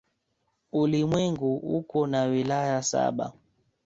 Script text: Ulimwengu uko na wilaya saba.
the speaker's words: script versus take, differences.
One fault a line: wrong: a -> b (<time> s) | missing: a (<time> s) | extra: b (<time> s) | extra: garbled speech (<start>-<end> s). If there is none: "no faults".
no faults